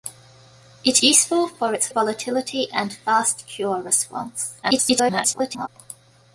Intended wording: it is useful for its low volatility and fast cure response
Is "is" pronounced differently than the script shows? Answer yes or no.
yes